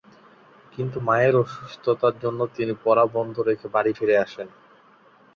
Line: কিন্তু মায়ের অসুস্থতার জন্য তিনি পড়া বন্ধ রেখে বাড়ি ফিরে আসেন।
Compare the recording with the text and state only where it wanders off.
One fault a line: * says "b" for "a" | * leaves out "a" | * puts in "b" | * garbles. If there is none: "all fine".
all fine